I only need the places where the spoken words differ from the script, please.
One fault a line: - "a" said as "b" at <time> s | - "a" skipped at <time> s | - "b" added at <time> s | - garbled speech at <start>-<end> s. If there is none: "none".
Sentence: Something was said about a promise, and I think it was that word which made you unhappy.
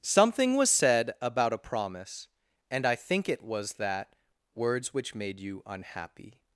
- "word" said as "words" at 4.5 s